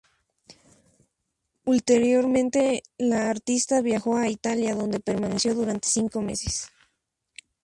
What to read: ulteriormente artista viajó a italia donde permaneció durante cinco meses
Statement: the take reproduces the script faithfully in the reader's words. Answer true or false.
false